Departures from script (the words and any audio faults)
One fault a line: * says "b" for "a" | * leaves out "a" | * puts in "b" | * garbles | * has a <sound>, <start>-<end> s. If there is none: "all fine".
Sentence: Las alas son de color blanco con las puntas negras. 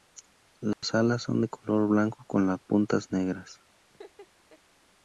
* has a dropout, 0.7-0.8 s
* has a laugh, 3.9-4.6 s